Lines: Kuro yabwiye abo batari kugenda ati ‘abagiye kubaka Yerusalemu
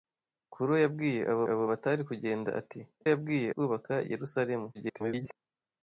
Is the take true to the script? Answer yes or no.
no